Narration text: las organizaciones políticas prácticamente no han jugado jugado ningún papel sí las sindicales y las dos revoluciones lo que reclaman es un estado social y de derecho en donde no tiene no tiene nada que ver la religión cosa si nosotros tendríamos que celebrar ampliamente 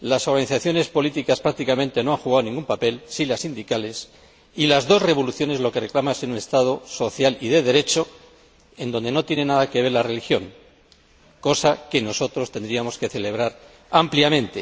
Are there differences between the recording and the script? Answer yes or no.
yes